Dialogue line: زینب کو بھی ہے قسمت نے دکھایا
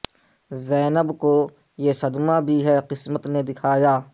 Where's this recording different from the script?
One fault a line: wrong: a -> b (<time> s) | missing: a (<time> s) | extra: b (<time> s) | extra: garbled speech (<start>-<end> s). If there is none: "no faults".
extra: یہ صدمہ (1.8 s)